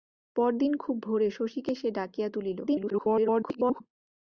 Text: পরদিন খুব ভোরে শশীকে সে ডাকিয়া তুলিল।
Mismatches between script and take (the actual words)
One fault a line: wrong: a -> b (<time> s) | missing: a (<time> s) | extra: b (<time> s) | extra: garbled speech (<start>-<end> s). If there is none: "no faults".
extra: garbled speech (2.7-3.8 s)